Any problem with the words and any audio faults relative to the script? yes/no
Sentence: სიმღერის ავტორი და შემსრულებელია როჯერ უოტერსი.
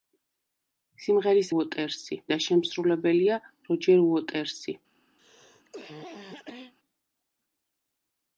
yes